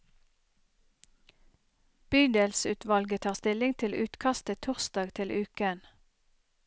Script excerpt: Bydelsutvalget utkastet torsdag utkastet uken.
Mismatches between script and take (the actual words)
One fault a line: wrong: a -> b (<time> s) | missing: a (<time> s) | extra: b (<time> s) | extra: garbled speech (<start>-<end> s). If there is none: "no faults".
extra: tar stilling til (3.2 s)
wrong: utkastet -> til (5.1 s)